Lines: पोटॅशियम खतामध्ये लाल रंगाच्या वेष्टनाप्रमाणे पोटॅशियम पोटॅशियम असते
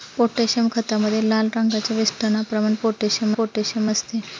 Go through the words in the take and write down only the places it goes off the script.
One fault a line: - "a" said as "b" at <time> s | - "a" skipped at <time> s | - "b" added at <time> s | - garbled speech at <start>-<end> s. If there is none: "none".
none